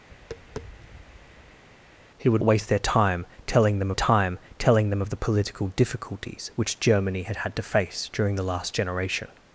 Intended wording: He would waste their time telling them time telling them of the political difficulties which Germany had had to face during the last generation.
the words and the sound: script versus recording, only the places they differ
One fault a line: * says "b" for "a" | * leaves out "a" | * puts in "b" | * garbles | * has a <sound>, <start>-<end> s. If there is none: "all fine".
* has a tap, 0.1-1.6 s